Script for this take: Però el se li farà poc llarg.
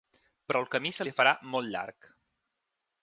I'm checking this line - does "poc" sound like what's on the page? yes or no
no